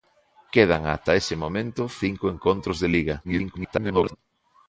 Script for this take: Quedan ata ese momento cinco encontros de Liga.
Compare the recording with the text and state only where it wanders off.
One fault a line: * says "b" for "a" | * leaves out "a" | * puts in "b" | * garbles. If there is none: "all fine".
* garbles